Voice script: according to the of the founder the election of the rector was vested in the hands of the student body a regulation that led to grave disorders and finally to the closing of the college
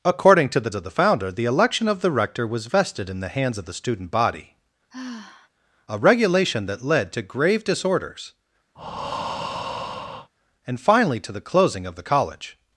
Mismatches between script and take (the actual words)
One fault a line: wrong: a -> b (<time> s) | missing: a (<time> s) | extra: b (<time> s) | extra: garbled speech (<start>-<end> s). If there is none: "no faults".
no faults